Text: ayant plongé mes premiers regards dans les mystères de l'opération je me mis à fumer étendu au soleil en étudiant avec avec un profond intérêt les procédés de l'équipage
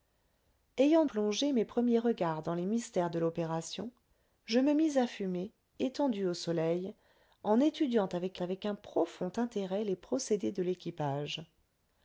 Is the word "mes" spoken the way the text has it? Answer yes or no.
yes